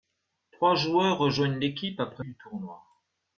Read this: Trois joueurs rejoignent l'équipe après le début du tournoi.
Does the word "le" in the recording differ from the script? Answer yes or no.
yes